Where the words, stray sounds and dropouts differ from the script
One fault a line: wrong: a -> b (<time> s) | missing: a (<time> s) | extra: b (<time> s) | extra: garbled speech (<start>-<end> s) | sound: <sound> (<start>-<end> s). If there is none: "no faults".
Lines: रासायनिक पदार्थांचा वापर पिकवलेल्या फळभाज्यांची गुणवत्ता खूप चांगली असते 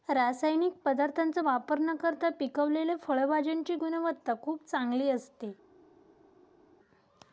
extra: न करता (1.8 s)